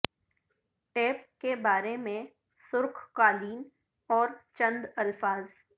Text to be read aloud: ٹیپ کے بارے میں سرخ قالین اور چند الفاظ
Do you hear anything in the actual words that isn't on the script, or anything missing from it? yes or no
no